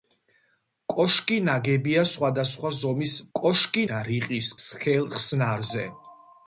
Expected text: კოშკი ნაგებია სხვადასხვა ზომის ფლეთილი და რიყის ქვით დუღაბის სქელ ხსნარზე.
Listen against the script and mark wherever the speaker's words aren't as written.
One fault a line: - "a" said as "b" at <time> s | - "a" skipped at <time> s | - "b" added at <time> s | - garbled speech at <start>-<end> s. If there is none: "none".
- "ფლეთილი" said as "კოშკი" at 3.4 s
- "ქვით დუღაბის" skipped at 4.5 s